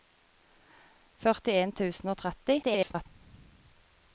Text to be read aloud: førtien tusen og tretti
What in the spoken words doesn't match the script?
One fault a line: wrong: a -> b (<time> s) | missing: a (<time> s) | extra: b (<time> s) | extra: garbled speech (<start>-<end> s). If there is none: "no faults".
extra: garbled speech (2.6-3.1 s)